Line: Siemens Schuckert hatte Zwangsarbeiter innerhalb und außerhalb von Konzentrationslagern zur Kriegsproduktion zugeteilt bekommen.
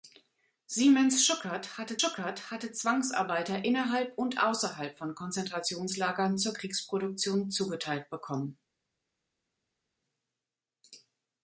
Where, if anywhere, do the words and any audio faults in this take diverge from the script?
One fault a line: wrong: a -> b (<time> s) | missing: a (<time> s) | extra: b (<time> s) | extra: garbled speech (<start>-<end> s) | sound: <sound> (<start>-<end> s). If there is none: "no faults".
extra: Schuckert hatte (2.0 s)